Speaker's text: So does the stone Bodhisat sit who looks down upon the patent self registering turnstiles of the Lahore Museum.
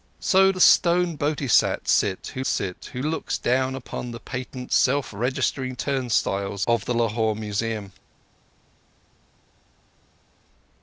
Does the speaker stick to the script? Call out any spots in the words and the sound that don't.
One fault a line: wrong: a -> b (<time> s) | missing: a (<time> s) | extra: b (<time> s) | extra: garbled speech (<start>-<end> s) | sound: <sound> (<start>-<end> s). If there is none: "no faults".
missing: does (0.5 s)
extra: sit who (2.4 s)